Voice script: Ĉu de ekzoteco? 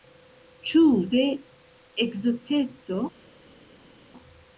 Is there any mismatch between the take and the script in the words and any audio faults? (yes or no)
no